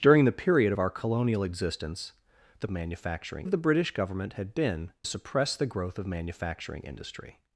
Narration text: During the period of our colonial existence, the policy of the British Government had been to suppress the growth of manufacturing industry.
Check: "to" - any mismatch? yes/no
yes